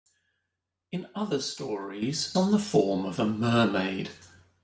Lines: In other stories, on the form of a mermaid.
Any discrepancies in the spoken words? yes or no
no